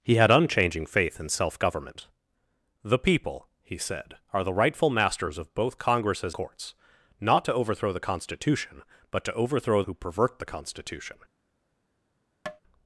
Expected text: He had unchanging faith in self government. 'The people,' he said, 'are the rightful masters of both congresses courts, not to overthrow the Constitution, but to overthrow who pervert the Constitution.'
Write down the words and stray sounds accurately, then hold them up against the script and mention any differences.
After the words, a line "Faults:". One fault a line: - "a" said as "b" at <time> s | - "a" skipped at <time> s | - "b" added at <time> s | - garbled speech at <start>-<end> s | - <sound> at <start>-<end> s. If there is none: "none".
He had unchanging faith in self government. 'The people,' he said, 'are the rightful masters of both congresses courts, not to overthrow the Constitution, but to overthrow who pervert the Constitution.'
Faults:
- tap at 12.5-12.6 s